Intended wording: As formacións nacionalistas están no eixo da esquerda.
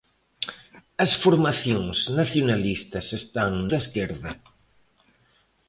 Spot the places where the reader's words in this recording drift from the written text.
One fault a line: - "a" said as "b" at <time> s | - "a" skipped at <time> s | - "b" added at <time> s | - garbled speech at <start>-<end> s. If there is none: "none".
- "no eixo" skipped at 3.5 s